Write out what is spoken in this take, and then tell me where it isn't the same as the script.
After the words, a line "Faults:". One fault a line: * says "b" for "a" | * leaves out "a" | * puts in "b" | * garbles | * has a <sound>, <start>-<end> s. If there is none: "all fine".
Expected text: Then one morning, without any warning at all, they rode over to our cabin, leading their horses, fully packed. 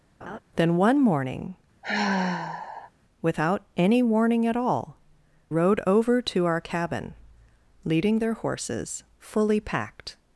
Then one morning, without any warning at all, rode over to our cabin, leading their horses, fully packed.
Faults:
* has a laugh, 0.2-0.4 s
* has a sigh, 1.8-2.9 s
* leaves out "they"